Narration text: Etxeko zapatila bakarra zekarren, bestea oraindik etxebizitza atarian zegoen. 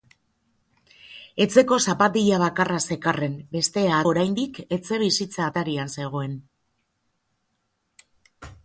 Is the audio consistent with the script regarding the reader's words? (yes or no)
yes